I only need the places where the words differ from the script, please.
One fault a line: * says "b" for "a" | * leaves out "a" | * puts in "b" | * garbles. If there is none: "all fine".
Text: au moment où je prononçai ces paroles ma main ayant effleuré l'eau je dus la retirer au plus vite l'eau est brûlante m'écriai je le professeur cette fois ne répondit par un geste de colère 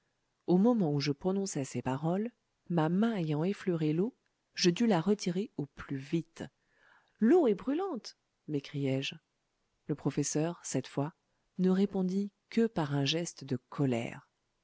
* puts in "que"